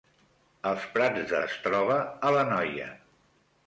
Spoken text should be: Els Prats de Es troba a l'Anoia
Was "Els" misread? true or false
false